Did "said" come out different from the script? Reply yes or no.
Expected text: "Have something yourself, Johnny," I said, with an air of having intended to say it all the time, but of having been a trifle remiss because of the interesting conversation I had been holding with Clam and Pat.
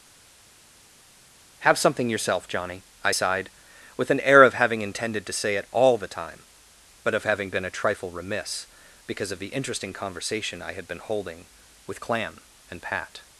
yes